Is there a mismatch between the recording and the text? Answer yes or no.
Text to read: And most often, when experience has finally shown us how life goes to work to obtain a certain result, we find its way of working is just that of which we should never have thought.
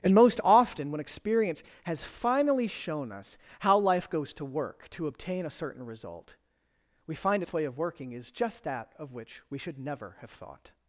no